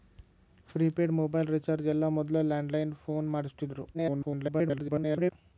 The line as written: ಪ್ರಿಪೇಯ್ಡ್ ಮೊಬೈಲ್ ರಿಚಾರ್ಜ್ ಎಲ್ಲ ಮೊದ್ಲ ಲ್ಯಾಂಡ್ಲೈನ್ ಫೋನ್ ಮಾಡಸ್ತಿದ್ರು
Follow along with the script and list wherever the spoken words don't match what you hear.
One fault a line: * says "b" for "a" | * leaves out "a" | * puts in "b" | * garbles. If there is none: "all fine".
* garbles